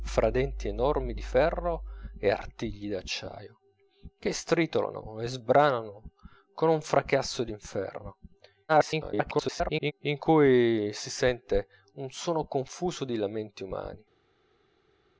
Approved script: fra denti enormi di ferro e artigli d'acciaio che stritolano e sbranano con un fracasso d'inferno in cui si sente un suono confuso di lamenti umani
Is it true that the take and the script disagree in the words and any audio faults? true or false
true